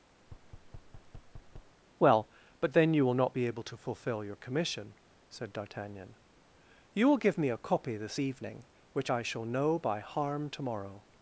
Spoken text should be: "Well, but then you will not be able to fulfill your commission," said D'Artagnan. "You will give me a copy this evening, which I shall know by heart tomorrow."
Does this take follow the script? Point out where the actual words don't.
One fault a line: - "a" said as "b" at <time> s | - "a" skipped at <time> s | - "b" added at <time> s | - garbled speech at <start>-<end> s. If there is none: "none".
- "heart" said as "harm" at 10.0 s